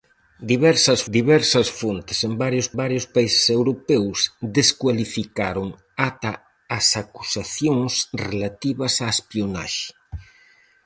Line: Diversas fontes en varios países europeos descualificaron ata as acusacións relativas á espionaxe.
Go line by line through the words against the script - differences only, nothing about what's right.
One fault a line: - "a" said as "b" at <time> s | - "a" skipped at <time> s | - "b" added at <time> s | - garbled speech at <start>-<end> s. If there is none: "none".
- "diversas" added at 1.2 s
- "varios" added at 2.8 s